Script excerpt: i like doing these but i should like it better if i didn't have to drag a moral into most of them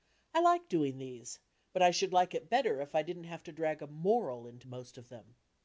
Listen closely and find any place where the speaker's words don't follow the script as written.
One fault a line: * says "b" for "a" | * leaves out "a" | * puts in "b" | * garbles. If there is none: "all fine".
all fine